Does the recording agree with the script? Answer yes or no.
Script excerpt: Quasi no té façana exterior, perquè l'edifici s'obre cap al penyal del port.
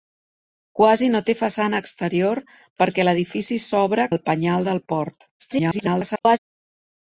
no